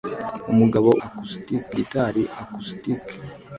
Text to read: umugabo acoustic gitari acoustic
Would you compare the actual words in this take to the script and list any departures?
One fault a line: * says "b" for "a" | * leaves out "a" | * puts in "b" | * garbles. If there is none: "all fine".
all fine